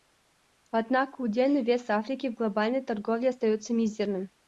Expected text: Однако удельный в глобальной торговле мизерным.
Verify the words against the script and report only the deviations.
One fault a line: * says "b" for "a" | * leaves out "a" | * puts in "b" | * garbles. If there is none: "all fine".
* puts in "вес Африки"
* puts in "остается"